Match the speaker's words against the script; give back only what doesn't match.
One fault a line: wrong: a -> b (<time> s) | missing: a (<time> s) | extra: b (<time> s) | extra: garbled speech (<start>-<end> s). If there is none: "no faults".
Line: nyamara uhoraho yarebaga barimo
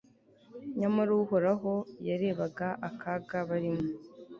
extra: akaga (2.9 s)